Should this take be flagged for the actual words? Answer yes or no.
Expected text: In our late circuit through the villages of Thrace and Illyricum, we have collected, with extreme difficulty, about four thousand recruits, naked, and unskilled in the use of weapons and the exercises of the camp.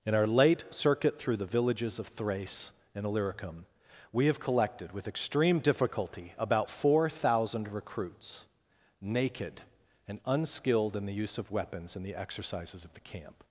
no